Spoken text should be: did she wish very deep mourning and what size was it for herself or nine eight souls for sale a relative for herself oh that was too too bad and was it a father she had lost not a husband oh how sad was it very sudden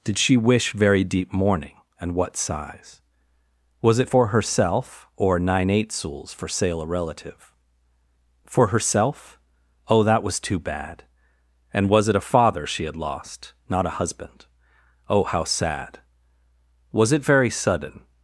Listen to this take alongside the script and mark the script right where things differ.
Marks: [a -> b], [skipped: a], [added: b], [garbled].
did she wish very deep mourning and what size was it for herself or nine eight souls for sale a relative for herself oh that was too [skipped: too] bad and was it a father she had lost not a husband oh how sad was it very sudden